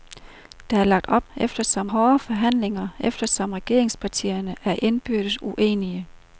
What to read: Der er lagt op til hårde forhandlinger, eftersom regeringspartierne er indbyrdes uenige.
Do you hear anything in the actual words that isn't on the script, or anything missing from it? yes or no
yes